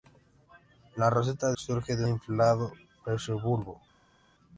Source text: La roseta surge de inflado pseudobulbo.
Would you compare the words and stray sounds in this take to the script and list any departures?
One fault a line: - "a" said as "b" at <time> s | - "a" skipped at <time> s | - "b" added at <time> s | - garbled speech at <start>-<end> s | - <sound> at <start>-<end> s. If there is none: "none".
none